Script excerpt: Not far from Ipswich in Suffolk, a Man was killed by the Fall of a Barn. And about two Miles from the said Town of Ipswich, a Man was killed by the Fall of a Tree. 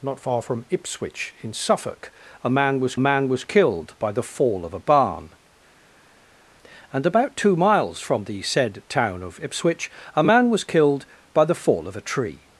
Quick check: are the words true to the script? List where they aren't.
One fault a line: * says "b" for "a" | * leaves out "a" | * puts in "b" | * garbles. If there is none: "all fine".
* puts in "Man was"